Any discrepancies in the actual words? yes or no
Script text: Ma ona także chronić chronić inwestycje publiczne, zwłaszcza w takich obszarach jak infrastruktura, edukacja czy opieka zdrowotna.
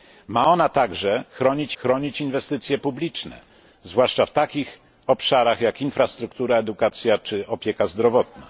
no